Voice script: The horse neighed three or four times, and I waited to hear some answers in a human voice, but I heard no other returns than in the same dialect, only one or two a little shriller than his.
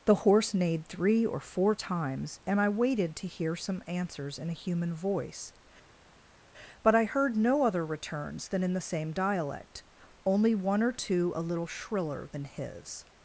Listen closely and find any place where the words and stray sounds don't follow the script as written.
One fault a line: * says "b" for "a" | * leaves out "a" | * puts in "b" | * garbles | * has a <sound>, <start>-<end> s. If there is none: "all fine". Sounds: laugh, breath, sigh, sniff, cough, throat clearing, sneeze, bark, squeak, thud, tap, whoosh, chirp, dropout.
all fine